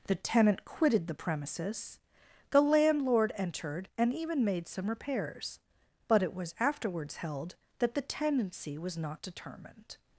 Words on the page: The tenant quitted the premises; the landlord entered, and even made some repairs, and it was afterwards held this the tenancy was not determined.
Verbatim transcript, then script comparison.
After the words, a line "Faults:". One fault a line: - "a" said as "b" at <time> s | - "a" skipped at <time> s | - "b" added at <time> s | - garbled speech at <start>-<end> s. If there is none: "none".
The tenant quitted the premises; the landlord entered, and even made some repairs, but it was afterwards held that the tenancy was not determined.
Faults:
- "and" said as "but" at 6.1 s
- "this" said as "that" at 7.8 s